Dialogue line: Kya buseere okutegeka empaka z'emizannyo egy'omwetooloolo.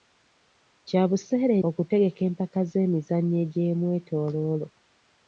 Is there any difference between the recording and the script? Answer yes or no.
no